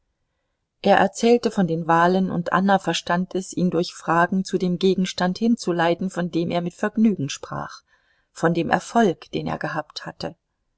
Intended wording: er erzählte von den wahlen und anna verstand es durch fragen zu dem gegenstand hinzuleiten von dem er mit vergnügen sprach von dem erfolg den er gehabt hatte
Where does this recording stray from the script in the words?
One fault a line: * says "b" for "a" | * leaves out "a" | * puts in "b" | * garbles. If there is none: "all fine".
* puts in "ihn"